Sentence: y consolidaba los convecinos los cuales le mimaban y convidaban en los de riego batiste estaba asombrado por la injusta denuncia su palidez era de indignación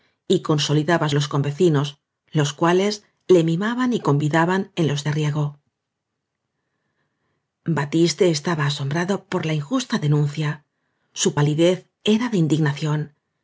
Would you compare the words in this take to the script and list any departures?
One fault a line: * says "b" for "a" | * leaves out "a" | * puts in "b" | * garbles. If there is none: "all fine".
all fine